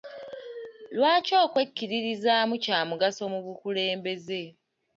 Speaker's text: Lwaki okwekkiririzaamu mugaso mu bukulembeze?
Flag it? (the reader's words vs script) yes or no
yes